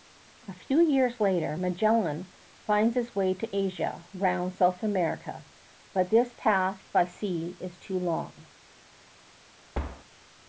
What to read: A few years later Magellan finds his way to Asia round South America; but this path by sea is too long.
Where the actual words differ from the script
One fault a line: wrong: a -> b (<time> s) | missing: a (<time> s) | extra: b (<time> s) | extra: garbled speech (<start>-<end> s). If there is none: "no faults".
no faults